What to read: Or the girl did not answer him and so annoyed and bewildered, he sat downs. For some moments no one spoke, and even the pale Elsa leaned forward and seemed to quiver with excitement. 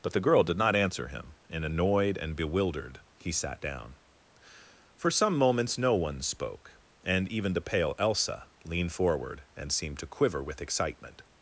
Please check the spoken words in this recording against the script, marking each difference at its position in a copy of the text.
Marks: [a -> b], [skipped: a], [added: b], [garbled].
[Or -> But] the girl did not answer him and [skipped: so] annoyed and bewildered, he sat [downs. -> down] For some moments no one spoke, and even the pale Elsa leaned forward and seemed to quiver with excitement.